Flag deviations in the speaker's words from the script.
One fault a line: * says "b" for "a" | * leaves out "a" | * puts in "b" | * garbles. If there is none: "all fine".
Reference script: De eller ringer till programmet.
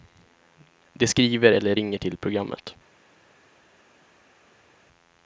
* puts in "skriver"